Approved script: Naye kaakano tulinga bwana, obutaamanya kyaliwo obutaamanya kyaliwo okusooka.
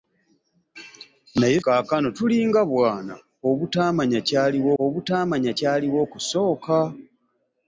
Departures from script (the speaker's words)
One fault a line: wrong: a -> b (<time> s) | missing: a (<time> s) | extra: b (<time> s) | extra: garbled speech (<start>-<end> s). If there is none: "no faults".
no faults